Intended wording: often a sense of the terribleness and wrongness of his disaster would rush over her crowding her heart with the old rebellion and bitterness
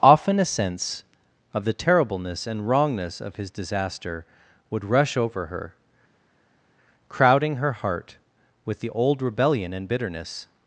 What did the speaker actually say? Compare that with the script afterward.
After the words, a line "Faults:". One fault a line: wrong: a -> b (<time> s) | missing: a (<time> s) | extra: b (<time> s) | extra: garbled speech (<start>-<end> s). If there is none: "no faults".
often a sense of the terribleness and wrongness of his disaster would rush over her crowding her heart with the old rebellion and bitterness
Faults:
no faults